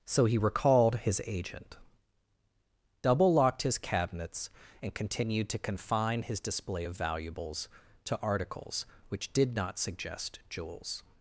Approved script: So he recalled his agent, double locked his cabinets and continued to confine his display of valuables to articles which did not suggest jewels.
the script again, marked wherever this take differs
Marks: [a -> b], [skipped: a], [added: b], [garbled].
So he recalled his agent, double locked his cabinets and continued to confine his display of valuables to articles which did not suggest jewels.